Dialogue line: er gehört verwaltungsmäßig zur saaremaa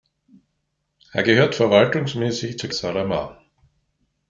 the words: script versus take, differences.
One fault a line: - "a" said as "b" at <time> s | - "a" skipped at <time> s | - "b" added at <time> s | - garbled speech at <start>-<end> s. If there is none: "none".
none